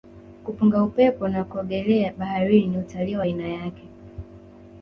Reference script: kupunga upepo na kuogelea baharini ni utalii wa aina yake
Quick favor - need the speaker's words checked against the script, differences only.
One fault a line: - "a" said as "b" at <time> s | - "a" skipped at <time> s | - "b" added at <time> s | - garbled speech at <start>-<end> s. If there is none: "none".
none